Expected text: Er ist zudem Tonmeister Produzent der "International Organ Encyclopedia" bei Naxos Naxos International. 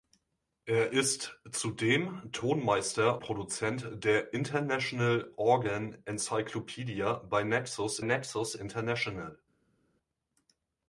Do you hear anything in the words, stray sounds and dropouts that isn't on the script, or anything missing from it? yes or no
no